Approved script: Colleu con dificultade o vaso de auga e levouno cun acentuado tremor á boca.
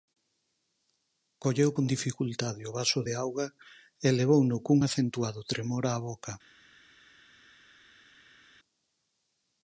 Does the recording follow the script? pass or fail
pass